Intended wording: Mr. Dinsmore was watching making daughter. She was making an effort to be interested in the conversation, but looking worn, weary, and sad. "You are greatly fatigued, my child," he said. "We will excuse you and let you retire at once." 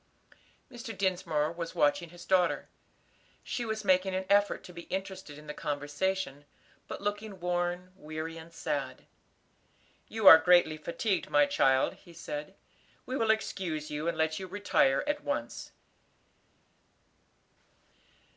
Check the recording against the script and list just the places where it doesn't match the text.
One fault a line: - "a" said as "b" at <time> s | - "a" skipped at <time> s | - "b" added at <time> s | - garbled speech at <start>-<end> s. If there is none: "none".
- "making" said as "his" at 2.1 s